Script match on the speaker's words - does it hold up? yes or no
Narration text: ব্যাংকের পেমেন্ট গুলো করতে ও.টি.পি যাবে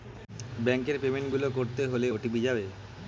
no